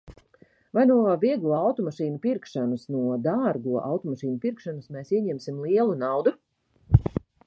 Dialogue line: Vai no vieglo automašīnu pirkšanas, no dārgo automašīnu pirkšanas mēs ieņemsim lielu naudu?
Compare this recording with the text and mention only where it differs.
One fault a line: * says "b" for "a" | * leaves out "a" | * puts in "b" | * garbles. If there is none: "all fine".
all fine